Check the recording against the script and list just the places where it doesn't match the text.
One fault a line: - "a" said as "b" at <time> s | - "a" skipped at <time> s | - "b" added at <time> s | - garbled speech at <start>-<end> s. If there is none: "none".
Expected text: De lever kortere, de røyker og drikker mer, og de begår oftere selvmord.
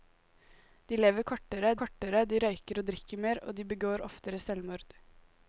- "kortere" added at 1.8 s